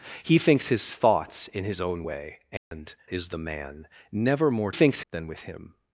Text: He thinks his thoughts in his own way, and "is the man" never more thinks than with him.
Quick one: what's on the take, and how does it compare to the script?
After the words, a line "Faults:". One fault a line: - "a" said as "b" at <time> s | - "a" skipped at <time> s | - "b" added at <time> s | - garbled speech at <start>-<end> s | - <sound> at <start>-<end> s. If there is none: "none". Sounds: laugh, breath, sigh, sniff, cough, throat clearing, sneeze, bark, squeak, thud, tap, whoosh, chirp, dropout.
He thinks his thoughts in his own way, and "is the man" never more thinks than with him.
Faults:
- dropout at 2.6-2.7 s